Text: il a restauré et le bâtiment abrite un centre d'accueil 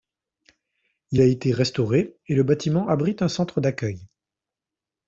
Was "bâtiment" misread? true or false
false